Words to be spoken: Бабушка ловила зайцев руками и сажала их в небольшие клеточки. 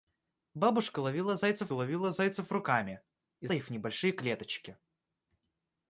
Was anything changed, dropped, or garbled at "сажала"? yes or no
yes